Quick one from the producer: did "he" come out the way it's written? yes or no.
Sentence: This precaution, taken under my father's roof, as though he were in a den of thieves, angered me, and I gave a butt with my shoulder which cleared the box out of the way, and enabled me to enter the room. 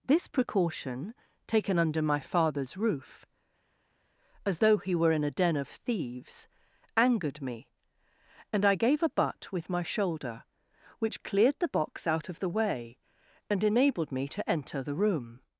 yes